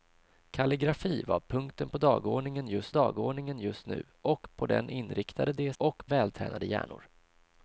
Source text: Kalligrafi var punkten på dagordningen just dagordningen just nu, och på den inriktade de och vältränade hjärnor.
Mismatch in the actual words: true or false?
false